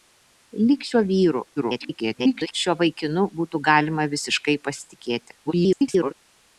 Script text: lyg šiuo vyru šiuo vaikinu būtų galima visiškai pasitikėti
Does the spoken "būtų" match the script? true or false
true